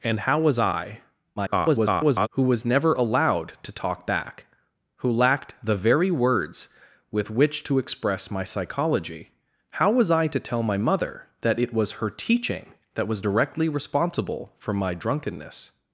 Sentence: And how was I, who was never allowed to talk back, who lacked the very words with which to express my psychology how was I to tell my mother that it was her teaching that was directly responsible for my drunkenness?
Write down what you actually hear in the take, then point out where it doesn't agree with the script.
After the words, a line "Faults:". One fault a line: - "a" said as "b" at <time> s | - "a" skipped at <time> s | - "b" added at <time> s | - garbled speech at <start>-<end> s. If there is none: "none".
And how was I, [garbled] who was never allowed to talk back, who lacked the very words with which to express my psychology how was I to tell my mother that it was her teaching that was directly responsible for my drunkenness?
Faults:
- garbled speech at 1.4-2.3 s